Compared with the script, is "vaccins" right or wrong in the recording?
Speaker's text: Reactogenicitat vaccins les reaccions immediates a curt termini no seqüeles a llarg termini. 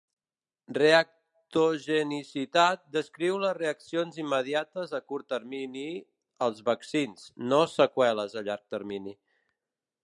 wrong